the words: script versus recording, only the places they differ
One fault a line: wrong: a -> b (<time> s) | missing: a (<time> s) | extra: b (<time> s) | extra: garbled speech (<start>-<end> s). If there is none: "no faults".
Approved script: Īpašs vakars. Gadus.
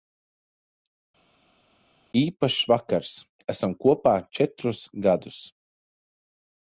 extra: Esam kopā četrus (3.5 s)